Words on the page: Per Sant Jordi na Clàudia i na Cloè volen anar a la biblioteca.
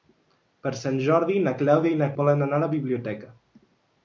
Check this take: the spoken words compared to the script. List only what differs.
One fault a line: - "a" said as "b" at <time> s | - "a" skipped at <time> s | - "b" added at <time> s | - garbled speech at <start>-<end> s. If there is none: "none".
- "Cloè" skipped at 2.1 s